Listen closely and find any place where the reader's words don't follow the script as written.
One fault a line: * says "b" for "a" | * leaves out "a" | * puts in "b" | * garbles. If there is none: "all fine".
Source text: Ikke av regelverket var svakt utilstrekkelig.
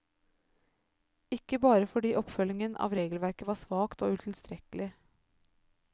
* puts in "bare fordi oppfølgingen"
* puts in "og"